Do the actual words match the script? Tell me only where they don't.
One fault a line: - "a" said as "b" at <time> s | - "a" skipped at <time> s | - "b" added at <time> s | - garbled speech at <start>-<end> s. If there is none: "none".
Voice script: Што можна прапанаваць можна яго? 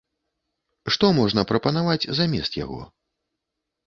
- "можна" said as "замест" at 2.2 s